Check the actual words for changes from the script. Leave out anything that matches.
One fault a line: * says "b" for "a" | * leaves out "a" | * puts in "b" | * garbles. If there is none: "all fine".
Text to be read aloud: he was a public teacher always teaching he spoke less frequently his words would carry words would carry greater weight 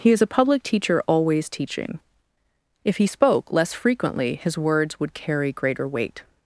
* says "is" for "was"
* puts in "if"
* leaves out "words would carry"